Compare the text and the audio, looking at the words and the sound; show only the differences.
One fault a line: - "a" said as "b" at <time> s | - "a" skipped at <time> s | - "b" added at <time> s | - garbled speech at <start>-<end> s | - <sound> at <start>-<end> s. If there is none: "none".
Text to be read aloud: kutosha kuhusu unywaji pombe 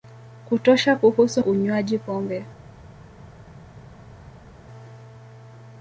none